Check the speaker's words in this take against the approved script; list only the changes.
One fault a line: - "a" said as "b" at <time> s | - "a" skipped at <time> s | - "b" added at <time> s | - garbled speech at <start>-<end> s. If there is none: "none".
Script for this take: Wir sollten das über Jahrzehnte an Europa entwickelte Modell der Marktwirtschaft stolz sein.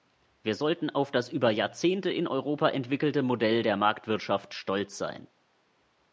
- "auf" added at 0.9 s
- "an" said as "in" at 2.1 s